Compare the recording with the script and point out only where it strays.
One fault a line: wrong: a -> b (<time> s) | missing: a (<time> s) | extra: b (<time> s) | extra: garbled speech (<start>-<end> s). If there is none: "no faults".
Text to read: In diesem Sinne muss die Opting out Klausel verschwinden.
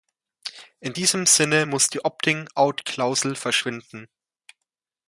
no faults